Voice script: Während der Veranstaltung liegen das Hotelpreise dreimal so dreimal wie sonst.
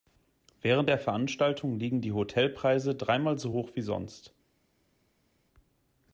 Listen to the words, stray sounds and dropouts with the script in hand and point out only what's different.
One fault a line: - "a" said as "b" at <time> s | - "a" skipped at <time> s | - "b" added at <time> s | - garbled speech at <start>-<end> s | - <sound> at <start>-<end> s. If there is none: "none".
- "das" said as "die" at 2.0 s
- "dreimal" said as "hoch" at 3.5 s